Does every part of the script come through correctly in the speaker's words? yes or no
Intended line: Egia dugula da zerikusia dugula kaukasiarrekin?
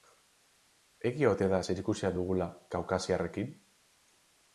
no